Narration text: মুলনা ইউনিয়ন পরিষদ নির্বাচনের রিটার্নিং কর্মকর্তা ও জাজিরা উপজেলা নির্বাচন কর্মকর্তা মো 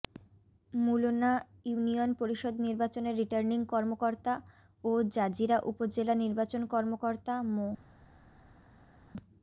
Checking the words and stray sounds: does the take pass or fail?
pass